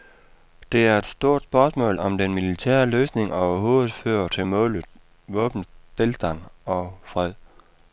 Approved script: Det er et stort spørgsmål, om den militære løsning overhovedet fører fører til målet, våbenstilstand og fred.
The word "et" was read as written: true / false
true